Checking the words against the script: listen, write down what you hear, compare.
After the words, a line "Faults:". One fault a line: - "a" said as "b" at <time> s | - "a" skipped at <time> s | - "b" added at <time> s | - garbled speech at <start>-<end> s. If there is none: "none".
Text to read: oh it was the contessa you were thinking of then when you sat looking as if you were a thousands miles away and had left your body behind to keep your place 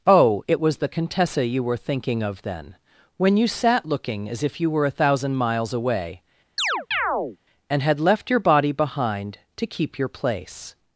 oh it was the contessa you were thinking of then when you sat looking as if you were a thousand miles away and had left your body behind to keep your place
Faults:
- "thousands" said as "thousand" at 4.9 s